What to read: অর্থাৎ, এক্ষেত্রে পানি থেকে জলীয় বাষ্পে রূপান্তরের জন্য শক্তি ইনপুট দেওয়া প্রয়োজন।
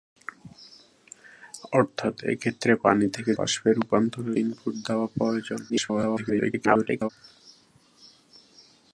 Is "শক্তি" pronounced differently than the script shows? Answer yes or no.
yes